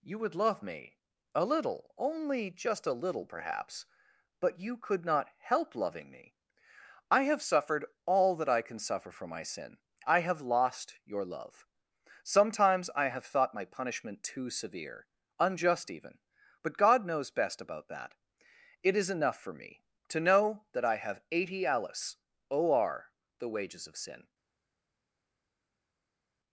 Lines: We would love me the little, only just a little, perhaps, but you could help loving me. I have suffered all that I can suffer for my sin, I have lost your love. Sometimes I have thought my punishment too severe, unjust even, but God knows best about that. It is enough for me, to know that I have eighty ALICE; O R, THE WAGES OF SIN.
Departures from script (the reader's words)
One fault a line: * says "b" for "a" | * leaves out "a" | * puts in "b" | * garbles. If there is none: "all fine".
* says "You" for "We"
* says "a" for "the"
* puts in "not"